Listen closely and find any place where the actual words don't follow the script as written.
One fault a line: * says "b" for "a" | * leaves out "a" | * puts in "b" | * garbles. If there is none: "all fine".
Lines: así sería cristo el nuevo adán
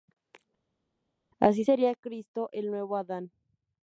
all fine